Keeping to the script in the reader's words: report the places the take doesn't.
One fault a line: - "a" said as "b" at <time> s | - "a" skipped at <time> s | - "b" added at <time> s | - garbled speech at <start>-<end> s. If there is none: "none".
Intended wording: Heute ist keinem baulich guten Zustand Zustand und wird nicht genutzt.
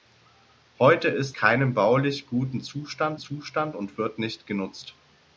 none